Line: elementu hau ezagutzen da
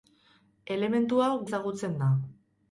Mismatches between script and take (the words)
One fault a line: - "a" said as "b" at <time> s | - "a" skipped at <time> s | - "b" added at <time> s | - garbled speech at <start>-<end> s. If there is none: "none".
none